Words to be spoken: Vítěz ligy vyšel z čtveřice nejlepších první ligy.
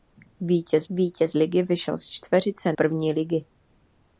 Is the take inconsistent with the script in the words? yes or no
yes